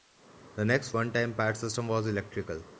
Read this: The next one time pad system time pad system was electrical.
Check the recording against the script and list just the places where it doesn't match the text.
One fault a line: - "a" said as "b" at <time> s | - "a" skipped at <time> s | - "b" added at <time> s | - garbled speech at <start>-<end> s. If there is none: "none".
- "time pad system" skipped at 1.9 s